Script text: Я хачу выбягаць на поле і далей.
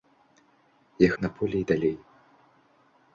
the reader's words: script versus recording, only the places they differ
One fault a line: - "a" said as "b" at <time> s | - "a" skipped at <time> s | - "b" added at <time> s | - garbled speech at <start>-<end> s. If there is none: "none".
- "хачу выбягаць" skipped at 1.1 s